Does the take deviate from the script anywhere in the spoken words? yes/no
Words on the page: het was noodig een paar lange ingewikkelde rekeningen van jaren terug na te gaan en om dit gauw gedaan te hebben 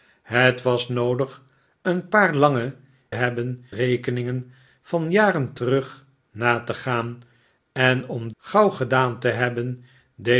yes